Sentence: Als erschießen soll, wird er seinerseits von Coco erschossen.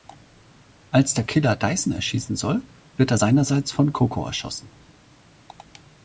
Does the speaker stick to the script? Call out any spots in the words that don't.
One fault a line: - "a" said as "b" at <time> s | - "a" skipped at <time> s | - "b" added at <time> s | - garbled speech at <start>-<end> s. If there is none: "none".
- "der Killer Dyson" added at 1.1 s